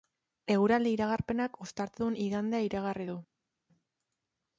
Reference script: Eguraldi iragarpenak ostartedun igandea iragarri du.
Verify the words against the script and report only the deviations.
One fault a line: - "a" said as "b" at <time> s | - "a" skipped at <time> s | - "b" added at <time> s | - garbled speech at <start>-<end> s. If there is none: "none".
none